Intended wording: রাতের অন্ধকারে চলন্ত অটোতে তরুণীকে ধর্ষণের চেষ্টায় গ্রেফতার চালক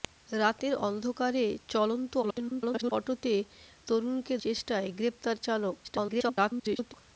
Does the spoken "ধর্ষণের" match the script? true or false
false